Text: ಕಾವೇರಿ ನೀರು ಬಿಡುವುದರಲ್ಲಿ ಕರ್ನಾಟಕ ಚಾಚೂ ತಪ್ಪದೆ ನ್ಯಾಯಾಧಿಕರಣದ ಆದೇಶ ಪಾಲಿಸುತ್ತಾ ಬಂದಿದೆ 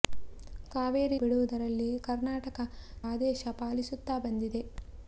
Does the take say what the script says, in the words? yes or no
no